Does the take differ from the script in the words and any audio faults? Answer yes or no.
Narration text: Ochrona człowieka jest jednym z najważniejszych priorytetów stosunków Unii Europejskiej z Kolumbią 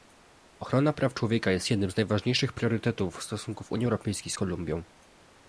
yes